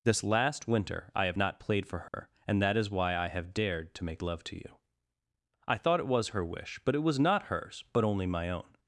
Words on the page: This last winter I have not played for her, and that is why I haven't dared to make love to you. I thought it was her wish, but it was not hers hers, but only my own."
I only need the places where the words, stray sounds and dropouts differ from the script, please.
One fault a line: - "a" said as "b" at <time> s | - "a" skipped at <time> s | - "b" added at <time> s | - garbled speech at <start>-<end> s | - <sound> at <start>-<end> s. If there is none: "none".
- dropout at 2.1-2.1 s
- "haven't" said as "have" at 3.3 s
- "hers" skipped at 7.8 s